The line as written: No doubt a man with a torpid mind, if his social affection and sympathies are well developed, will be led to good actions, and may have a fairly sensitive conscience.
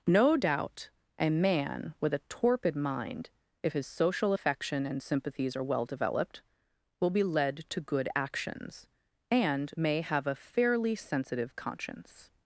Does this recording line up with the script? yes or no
yes